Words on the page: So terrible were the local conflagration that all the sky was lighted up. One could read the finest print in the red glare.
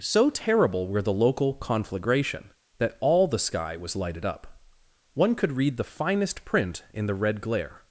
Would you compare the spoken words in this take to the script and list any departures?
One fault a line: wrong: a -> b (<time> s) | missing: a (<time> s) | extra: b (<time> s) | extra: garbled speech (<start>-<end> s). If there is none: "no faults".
no faults